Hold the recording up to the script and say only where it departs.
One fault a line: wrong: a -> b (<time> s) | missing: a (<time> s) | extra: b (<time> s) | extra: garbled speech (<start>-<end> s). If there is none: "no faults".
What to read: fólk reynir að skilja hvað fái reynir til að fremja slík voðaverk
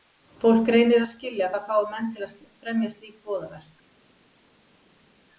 wrong: reynir -> menn (1.9 s)